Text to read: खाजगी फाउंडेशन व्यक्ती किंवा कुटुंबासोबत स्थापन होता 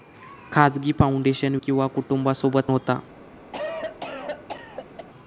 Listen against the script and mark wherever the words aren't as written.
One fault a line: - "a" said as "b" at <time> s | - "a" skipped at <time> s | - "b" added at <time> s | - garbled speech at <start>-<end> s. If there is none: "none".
- "व्यक्ती" skipped at 1.6 s
- "स्थापन" skipped at 2.7 s